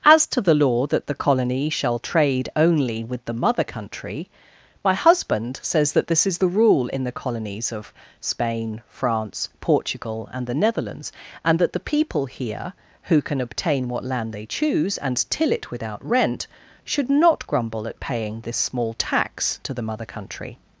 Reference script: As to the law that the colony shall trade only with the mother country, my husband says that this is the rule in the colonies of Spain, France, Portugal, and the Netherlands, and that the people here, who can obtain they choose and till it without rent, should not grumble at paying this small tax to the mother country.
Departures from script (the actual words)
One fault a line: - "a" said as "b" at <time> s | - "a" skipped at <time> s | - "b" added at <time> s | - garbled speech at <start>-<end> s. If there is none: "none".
- "what land" added at 13.9 s